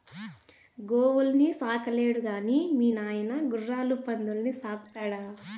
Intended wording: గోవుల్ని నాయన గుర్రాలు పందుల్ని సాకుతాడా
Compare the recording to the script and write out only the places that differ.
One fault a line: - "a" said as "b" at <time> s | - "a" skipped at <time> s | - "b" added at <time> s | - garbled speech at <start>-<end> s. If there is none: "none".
- "సాకలేడు గాని మీ" added at 1.6 s